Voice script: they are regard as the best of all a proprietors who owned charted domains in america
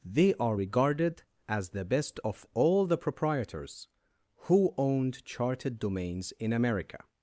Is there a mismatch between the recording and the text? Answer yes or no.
yes